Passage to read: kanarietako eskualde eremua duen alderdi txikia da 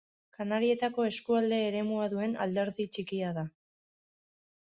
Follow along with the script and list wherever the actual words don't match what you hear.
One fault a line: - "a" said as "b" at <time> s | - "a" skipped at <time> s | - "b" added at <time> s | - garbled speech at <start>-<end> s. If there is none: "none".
none